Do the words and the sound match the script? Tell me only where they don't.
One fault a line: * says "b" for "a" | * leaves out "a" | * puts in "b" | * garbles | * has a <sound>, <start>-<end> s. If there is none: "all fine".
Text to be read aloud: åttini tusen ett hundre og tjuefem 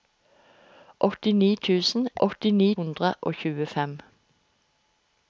* says "åttini" for "ett"